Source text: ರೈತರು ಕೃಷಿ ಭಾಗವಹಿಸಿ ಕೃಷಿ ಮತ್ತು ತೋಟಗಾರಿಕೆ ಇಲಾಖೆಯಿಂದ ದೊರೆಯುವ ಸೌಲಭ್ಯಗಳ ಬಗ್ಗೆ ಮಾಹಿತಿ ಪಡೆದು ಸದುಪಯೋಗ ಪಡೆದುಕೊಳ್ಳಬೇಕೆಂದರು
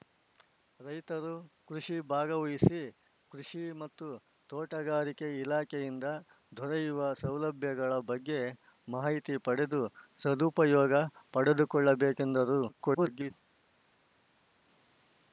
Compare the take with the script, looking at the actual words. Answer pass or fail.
fail